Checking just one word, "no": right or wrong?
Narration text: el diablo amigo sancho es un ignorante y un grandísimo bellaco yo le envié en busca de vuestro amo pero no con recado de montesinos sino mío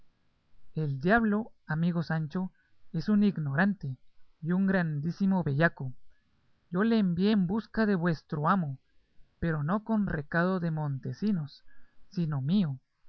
right